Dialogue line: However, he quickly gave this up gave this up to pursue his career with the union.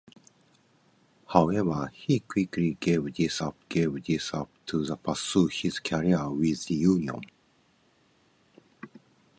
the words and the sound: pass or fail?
pass